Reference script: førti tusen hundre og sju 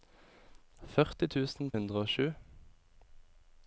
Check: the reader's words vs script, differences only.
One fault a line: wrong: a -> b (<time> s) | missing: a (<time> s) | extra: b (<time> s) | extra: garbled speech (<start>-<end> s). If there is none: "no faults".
no faults